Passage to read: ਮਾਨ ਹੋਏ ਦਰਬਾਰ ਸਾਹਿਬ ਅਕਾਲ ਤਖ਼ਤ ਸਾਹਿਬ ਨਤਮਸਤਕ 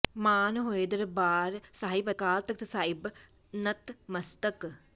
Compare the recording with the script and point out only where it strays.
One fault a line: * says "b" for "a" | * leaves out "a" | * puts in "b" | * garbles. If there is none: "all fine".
all fine